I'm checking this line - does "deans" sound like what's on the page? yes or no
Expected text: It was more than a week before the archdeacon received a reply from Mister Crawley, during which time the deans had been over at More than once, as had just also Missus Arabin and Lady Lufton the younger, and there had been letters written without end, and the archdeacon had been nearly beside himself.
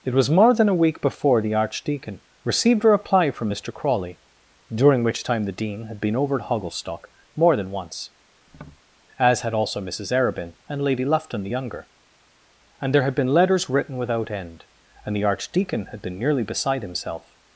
no